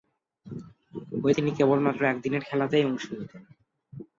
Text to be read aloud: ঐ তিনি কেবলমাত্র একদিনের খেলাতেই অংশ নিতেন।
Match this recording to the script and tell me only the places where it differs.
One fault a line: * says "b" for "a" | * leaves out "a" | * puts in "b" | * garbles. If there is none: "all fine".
all fine